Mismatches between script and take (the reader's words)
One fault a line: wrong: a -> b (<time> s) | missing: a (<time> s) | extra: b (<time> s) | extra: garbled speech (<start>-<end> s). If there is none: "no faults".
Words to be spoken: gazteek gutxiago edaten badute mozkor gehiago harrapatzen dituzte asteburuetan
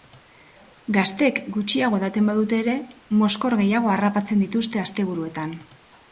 extra: ere (2.6 s)